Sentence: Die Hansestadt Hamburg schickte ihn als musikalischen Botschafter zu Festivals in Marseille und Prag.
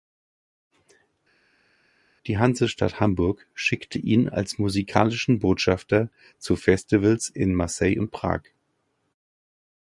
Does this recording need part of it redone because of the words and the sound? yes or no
no